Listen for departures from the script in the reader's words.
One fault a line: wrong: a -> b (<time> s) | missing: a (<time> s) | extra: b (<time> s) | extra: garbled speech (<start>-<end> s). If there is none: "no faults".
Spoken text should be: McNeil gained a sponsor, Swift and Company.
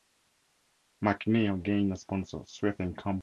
no faults